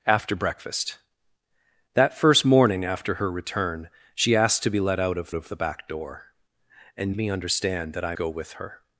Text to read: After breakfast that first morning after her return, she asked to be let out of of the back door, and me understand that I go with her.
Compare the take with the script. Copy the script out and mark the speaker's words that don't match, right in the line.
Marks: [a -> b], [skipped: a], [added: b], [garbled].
After breakfast that first morning after her return, she asked to be let out of of the back door, and me understand that I go with her.